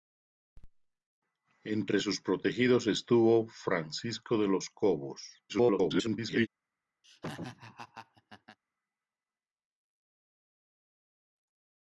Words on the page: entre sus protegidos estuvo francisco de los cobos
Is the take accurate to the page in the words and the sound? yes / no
no